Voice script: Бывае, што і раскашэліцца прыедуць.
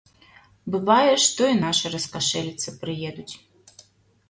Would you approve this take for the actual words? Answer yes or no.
no